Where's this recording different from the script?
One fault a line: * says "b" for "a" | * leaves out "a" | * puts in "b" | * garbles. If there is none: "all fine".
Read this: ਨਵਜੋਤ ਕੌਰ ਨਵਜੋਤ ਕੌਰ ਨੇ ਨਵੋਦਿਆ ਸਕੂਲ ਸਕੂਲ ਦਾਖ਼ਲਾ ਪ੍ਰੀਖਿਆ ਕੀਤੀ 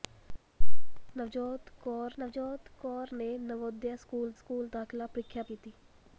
all fine